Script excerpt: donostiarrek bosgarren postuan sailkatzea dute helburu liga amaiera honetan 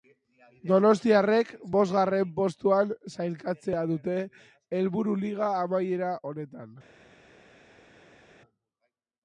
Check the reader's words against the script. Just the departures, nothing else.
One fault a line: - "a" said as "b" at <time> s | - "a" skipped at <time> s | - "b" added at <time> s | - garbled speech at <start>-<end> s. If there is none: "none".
none